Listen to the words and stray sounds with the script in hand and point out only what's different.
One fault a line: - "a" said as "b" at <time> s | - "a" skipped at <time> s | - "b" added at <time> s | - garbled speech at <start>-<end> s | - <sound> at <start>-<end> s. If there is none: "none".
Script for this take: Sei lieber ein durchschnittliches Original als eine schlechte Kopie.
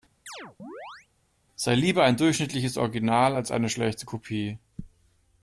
- chirp at 0.3-1.1 s